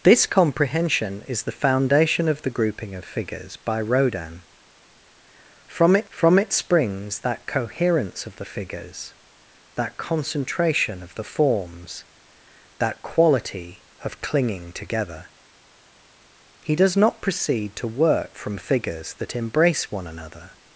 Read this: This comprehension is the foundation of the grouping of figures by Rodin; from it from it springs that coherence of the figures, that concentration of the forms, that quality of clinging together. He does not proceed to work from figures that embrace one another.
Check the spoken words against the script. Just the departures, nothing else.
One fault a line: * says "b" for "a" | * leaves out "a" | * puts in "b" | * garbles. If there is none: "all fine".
all fine